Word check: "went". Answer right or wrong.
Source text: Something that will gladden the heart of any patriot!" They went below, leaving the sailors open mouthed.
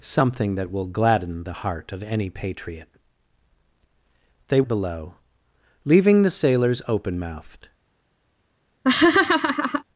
wrong